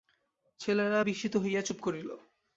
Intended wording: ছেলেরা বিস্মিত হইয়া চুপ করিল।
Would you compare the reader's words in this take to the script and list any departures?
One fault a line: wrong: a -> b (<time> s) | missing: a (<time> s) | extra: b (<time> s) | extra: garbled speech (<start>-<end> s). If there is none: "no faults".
no faults